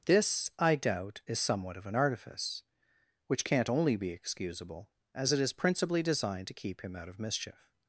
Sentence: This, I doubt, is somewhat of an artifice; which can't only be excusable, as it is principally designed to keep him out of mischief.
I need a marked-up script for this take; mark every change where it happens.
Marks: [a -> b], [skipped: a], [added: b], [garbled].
This, I doubt, is somewhat of an artifice; which can't only be excusable, as it is principally designed to keep him out of mischief.